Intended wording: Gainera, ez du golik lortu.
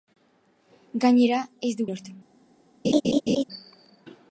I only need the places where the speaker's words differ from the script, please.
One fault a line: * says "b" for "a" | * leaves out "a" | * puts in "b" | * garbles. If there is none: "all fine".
* leaves out "golik"